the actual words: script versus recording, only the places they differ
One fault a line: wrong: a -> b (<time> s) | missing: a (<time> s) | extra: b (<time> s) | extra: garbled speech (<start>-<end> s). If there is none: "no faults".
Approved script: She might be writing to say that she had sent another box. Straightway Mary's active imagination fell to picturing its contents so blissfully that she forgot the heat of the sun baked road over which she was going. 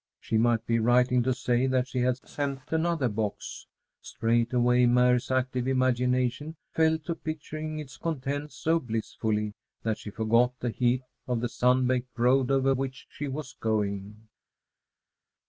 no faults